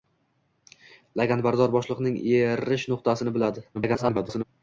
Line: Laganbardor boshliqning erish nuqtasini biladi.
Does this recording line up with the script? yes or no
no